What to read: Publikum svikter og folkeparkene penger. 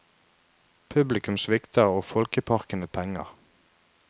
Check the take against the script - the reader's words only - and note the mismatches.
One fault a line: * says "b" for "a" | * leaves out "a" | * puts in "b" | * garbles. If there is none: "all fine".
all fine